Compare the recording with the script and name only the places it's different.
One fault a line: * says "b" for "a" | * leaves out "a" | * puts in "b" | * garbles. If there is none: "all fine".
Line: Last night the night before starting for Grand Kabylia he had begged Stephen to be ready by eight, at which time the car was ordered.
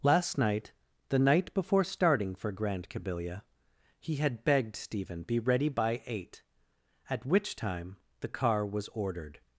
* leaves out "to"